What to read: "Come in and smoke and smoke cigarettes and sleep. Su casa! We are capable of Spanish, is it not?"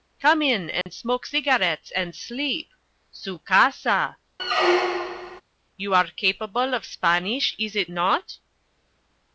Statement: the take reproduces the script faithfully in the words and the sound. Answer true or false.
false